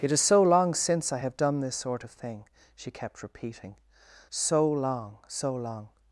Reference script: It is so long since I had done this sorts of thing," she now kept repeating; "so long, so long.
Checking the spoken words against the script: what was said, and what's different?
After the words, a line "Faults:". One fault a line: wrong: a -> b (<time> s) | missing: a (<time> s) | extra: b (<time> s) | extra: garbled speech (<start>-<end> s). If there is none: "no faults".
It is so long since I have done this sort of thing," she kept repeating; "so long, so long.
Faults:
wrong: had -> have (1.2 s)
wrong: sorts -> sort (1.8 s)
missing: now (2.9 s)